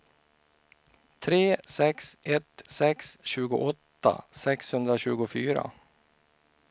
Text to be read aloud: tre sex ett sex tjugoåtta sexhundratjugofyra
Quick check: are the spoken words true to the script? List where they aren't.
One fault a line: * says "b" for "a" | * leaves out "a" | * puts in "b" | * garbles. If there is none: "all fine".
all fine